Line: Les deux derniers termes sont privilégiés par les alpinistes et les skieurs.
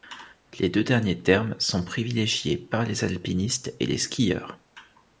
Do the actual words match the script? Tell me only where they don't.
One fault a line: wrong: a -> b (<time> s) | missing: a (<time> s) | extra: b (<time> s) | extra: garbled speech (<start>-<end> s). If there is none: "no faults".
no faults